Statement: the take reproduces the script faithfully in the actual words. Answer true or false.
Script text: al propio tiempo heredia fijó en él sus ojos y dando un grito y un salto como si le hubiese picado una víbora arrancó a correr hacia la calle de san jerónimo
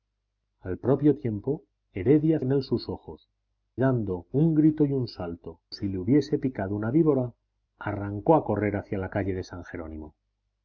false